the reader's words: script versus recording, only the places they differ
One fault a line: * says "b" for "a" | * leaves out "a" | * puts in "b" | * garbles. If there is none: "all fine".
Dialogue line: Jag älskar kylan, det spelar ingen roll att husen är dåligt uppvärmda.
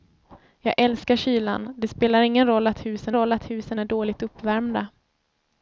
* puts in "roll att husen"